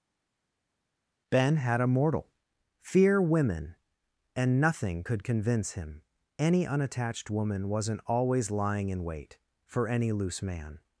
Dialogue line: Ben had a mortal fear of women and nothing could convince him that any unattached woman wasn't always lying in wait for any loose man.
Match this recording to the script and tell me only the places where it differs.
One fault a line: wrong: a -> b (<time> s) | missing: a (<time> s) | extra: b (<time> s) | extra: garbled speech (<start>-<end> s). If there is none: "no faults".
missing: of (3.2 s)
missing: that (6.0 s)